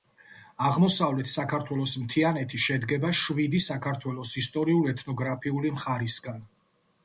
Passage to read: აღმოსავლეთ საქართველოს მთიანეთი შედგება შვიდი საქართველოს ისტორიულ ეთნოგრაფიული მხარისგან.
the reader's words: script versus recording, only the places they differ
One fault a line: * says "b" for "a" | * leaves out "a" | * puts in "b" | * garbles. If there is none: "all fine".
all fine